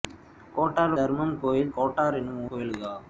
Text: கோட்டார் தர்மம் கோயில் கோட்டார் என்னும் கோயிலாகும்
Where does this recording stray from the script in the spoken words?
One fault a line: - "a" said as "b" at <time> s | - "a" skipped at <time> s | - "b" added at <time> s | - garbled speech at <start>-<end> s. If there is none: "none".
none